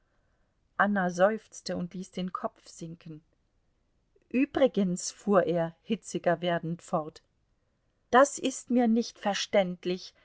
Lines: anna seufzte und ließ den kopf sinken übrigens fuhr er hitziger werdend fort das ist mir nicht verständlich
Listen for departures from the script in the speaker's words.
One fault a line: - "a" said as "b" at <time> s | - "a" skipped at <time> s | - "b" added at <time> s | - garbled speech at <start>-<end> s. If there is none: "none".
none